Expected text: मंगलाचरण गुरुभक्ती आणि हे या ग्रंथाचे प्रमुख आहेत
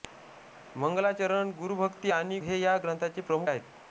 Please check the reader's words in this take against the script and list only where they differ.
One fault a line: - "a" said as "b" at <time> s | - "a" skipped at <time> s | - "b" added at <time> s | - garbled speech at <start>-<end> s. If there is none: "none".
none